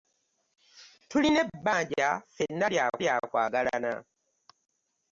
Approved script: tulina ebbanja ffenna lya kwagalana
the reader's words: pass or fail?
fail